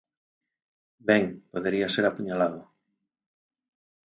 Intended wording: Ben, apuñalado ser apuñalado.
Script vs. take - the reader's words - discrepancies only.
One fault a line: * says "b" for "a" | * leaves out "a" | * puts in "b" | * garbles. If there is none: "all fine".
* says "podería" for "apuñalado"